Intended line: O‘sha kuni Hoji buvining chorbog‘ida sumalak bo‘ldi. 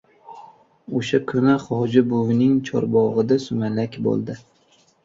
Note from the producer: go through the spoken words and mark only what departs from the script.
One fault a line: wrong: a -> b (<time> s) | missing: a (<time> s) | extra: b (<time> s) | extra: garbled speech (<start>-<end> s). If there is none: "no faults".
no faults